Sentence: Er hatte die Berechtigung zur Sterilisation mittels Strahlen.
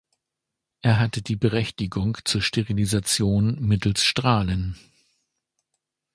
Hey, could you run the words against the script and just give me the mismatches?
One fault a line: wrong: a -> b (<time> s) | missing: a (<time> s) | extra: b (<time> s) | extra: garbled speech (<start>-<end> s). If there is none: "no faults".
no faults